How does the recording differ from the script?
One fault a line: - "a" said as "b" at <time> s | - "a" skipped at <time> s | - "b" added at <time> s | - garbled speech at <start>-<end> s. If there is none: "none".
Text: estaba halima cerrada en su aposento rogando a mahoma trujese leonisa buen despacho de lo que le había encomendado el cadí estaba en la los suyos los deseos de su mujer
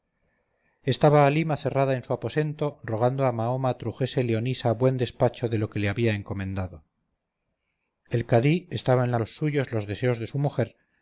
none